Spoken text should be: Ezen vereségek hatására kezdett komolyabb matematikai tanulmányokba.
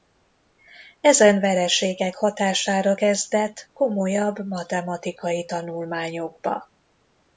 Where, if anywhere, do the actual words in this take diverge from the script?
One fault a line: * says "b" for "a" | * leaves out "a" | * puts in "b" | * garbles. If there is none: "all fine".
all fine